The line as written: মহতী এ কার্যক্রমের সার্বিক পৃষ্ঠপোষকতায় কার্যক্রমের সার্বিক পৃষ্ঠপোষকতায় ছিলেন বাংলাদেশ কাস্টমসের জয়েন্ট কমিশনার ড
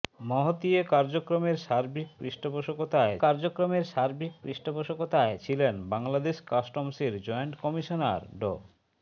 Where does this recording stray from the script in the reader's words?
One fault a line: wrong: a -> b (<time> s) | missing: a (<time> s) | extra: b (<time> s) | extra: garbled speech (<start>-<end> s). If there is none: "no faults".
no faults